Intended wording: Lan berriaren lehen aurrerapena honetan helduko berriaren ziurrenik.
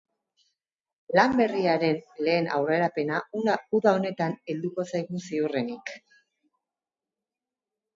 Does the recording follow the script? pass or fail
fail